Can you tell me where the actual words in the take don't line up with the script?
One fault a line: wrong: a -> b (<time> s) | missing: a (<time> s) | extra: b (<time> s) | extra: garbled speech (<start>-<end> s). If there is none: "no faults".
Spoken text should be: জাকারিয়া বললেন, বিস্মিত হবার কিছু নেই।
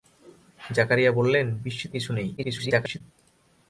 missing: হবার (1.9 s)
extra: garbled speech (2.4-3.0 s)